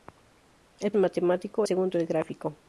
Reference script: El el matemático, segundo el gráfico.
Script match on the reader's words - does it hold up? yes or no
yes